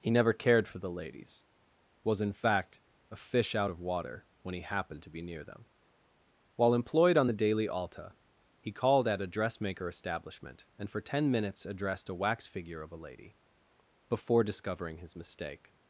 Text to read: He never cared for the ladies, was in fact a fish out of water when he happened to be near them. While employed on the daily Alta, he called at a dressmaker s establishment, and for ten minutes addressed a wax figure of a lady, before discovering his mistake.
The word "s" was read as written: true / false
false